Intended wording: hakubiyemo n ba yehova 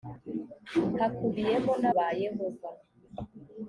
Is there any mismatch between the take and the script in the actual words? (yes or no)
no